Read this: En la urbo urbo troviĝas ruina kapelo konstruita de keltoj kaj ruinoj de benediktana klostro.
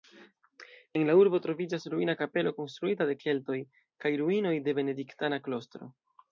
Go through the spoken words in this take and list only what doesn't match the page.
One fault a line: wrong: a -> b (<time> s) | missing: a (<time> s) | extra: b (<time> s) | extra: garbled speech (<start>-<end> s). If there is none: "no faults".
missing: urbo (1.4 s)